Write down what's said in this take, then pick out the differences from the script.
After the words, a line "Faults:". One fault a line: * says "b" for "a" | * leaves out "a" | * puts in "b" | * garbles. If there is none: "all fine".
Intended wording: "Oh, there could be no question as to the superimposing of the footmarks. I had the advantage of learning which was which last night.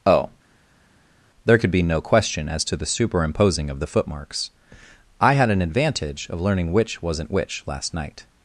"Oh, there could be no question as to the superimposing of the footmarks. I had an advantage of learning which wasn't which last night.
Faults:
* says "an" for "the"
* says "wasn't" for "was"